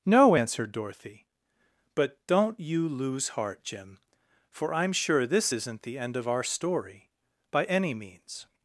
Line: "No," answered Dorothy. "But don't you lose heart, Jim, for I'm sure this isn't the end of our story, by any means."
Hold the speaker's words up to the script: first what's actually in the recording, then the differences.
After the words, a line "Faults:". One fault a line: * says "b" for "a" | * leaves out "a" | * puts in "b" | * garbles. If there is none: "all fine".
"No," answered Dorothy. "But don't you lose heart, Jim, for I'm sure this isn't the end of our story, by any means."
Faults:
all fine